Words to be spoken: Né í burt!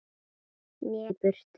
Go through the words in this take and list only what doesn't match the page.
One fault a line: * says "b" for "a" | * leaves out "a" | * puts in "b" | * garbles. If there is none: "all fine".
all fine